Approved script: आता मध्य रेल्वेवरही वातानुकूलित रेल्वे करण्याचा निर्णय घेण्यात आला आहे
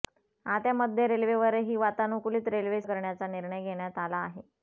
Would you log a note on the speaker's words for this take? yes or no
no